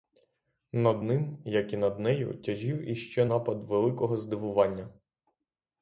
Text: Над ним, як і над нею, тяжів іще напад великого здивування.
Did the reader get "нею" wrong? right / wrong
right